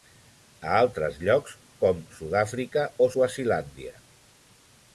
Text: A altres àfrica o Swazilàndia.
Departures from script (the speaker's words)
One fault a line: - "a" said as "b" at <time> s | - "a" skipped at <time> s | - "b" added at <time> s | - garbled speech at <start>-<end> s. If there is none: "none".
- "llocs com Sud" added at 1.3 s